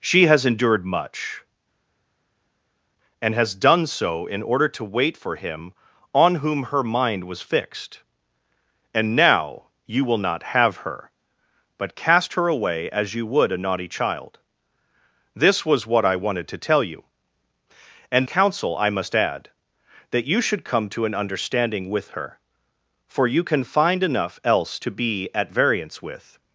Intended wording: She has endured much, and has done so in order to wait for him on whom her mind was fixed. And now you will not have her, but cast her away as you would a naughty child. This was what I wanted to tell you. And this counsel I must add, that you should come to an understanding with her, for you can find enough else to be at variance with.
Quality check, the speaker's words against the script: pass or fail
fail